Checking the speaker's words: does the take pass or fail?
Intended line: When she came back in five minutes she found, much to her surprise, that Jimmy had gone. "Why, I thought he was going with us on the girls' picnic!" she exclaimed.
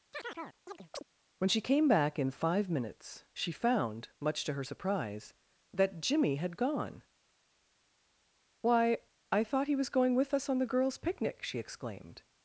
pass